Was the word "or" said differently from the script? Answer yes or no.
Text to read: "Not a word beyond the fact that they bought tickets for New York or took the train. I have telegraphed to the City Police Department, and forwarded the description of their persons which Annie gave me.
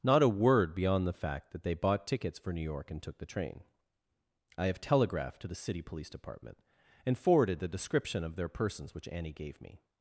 yes